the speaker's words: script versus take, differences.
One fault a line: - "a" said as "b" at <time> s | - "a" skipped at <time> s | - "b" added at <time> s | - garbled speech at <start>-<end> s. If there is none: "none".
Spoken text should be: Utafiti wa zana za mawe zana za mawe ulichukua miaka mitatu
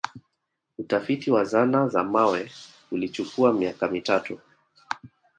- "zana za mawe" skipped at 2.5 s